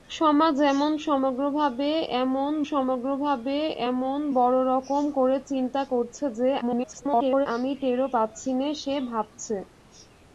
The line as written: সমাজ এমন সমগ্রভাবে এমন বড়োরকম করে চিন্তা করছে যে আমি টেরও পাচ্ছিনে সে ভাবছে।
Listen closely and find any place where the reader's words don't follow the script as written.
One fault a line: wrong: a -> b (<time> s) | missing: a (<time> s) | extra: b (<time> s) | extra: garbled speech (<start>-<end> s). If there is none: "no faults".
extra: সমগ্রভাবে এমন (2.7 s)
extra: garbled speech (6.6-7.5 s)